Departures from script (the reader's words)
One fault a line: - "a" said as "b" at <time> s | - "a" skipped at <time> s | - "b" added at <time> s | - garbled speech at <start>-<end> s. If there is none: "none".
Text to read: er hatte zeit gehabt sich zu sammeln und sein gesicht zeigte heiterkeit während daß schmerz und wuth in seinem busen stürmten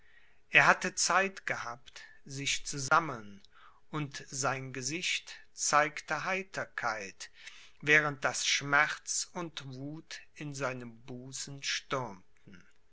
none